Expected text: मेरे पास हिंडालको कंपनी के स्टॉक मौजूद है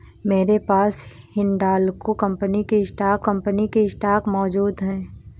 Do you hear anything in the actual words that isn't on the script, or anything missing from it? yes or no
yes